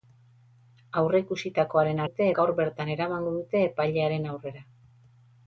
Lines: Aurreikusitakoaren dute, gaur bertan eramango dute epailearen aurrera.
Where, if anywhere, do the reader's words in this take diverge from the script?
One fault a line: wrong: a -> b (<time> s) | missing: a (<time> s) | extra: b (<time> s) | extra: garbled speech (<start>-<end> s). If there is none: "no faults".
no faults